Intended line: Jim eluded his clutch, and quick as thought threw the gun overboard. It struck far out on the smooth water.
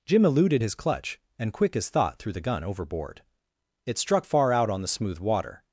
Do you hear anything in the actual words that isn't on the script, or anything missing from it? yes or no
no